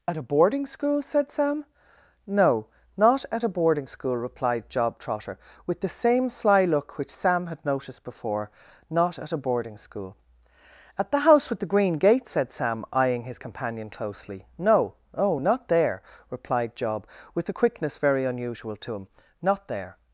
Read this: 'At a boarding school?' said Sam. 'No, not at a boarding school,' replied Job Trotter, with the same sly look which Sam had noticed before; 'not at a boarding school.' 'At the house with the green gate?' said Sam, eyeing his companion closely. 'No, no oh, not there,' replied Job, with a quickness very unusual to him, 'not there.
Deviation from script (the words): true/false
true